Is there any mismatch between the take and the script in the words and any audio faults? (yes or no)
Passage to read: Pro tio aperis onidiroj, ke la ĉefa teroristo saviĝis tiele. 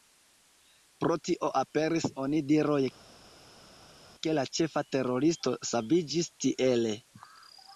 no